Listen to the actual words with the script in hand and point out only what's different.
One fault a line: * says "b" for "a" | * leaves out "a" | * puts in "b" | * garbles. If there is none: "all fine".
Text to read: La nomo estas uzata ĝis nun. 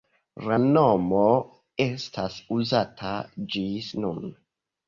all fine